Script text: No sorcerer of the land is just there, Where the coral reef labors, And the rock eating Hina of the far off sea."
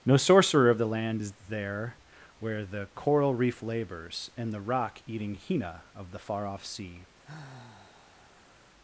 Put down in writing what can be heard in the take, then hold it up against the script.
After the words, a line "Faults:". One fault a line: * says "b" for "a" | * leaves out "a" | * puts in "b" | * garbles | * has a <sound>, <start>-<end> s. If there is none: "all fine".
No sorcerer of the land is there, Where the coral reef labors, And the rock eating Hina of the far off sea."
Faults:
* leaves out "just"
* has a sigh, 7.2-8.7 s